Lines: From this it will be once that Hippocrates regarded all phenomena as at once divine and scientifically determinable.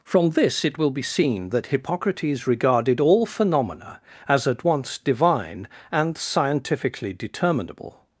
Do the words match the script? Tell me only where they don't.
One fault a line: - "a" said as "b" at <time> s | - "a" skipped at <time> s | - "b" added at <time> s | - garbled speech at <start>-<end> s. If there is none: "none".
- "once" said as "seen" at 1.0 s